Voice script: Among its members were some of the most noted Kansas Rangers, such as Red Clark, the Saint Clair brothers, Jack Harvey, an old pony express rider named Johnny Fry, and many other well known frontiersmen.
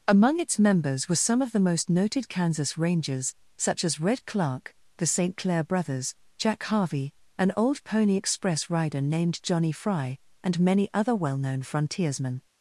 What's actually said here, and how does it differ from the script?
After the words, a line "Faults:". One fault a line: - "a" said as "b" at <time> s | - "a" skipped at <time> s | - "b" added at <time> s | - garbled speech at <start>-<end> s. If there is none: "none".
Among its members were some of the most noted Kansas Rangers, such as Red Clark, the Saint Clair brothers, Jack Harvey, an old pony express rider named Johnny Fry, and many other well known frontiersmen.
Faults:
none